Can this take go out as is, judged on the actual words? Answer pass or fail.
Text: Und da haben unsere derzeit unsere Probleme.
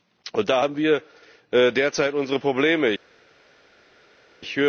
fail